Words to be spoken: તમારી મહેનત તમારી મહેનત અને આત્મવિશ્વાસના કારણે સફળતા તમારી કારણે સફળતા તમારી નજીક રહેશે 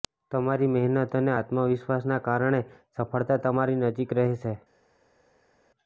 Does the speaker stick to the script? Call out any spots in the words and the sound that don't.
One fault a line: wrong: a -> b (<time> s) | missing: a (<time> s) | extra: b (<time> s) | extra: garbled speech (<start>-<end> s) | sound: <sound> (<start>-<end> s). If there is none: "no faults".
missing: તમારી મહેનત (1.1 s)
missing: કારણે સફળતા તમારી (3.8 s)